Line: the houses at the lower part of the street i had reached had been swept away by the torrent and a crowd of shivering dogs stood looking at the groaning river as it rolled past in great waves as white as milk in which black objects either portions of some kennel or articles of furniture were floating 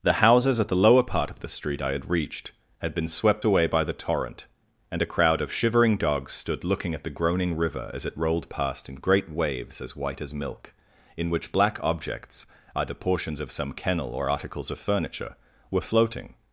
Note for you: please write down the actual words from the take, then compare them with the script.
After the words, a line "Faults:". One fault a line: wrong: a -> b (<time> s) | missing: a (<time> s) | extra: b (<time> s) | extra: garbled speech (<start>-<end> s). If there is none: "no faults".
the houses at the lower part of the street i had reached had been swept away by the torrent and a crowd of shivering dogs stood looking at the groaning river as it rolled past in great waves as white as milk in which black objects either portions of some kennel or articles of furniture were floating
Faults:
no faults